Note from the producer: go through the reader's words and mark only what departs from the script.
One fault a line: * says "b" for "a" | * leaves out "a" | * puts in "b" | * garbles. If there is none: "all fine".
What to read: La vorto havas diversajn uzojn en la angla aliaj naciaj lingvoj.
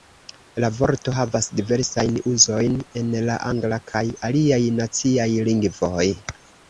* puts in "kaj"